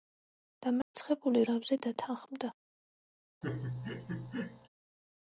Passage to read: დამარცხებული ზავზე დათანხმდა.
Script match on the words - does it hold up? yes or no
yes